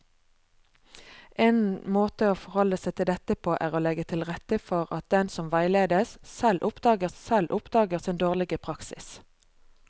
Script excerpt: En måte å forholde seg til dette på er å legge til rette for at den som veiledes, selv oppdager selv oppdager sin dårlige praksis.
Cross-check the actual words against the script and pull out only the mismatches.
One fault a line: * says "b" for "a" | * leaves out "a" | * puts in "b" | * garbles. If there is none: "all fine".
all fine